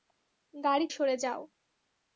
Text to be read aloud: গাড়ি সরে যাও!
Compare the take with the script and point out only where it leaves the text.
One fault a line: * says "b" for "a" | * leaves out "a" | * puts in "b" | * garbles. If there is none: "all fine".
all fine